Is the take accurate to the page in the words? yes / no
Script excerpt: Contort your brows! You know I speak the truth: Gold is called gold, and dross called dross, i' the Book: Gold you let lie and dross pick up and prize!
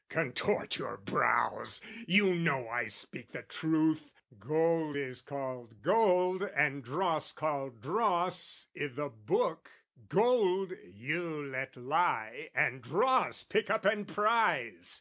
yes